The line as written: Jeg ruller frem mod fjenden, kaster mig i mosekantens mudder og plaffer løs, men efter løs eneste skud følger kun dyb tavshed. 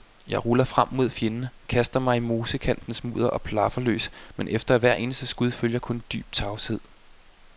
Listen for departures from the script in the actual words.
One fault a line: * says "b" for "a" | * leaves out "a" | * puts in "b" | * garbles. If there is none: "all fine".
* says "hvert" for "løs"